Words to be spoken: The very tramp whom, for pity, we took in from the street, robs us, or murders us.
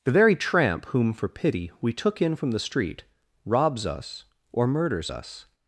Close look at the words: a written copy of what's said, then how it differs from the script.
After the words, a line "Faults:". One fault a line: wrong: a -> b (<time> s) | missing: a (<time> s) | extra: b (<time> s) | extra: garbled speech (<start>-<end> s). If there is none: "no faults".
The very tramp whom, for pity, we took in from the street, robs us, or murders us.
Faults:
no faults